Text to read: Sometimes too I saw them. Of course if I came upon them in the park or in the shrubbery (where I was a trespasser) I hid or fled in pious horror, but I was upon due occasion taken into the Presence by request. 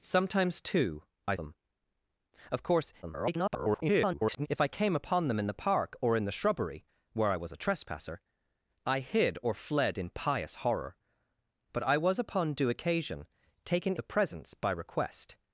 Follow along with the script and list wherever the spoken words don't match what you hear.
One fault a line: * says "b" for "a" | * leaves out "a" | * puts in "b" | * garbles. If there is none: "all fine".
* leaves out "saw"
* garbles
* leaves out "into"